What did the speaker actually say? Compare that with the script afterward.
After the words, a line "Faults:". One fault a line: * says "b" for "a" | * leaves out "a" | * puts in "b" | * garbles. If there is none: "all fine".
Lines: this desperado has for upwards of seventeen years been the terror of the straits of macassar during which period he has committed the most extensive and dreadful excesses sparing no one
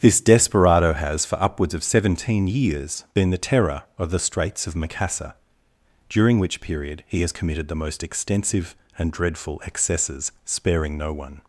this desperado has for upwards of seventeen years been the terror of the straits of macassar during which period he has committed the most extensive and dreadful excesses sparing no one
Faults:
all fine